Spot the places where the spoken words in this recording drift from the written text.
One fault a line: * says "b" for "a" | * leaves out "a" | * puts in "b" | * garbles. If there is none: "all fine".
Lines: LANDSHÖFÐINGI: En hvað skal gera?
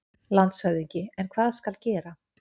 all fine